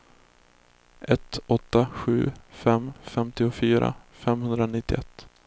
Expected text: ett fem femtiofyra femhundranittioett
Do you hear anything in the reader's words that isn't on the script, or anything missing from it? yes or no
yes